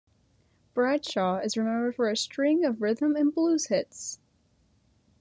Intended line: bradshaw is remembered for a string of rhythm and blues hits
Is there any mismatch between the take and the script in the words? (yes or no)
no